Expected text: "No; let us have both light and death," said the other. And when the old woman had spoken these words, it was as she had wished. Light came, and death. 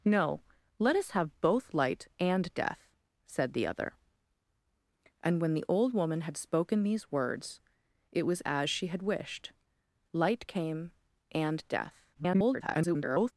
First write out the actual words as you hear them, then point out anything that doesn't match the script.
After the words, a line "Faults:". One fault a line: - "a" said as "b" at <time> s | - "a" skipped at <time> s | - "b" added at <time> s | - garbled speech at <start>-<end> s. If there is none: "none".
"No; let us have both light and death," said the other. And when the old woman had spoken these words, it was as she had wished. Light came, and death. [garbled]
Faults:
- garbled speech at 12.1-13.3 s